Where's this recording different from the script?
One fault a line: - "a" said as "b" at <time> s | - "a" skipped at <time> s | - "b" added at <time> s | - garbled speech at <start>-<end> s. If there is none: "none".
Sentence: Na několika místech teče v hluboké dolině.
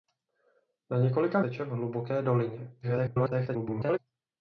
- "místech" skipped at 1.4 s
- garbled speech at 2.8-4.0 s